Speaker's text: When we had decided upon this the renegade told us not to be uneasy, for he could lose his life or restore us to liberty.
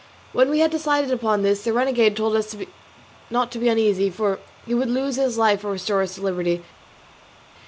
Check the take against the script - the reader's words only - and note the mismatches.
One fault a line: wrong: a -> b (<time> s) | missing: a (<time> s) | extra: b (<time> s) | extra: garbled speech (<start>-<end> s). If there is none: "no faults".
wrong: could -> would (4.7 s)